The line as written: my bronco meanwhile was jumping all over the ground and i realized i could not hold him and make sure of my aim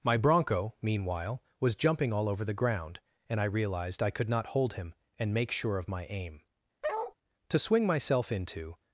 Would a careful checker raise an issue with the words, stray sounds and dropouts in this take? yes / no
yes